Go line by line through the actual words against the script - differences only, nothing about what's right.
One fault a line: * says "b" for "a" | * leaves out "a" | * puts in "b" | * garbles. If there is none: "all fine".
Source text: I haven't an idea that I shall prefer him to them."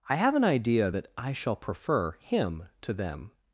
* says "have" for "haven't"